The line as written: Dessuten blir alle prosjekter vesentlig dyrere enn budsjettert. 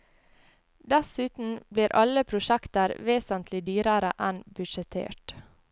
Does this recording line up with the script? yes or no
yes